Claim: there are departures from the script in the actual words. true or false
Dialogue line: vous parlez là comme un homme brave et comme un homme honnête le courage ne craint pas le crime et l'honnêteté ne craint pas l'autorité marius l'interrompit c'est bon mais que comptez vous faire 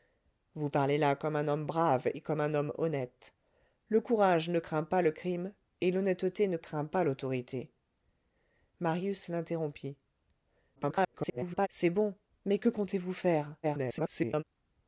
true